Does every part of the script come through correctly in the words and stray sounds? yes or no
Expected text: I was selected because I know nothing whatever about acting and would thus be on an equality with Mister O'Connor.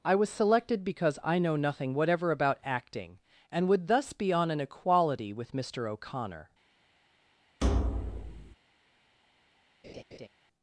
no